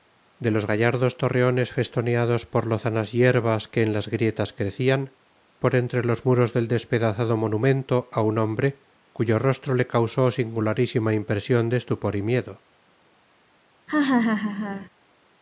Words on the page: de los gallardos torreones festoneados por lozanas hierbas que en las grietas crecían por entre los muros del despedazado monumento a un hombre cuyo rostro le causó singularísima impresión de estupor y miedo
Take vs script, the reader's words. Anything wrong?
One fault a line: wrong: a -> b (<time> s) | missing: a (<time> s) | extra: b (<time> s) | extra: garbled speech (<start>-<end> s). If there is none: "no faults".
no faults